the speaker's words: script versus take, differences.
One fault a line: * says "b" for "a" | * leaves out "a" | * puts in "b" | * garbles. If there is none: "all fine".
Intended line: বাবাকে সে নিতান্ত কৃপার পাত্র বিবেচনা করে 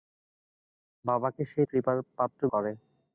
* leaves out "নিতান্ত"
* leaves out "বিবেচনা"